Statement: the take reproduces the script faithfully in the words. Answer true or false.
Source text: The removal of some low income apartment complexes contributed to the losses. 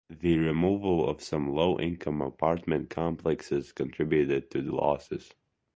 true